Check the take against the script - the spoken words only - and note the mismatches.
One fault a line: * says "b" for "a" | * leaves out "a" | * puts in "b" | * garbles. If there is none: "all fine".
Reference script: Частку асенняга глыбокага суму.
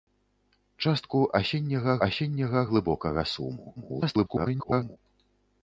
* puts in "асенняга"
* garbles